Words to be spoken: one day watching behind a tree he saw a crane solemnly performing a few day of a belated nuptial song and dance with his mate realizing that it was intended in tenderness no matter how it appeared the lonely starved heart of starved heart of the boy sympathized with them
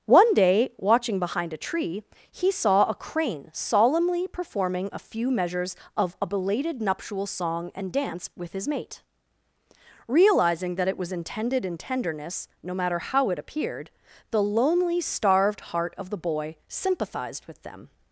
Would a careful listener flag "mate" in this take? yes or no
no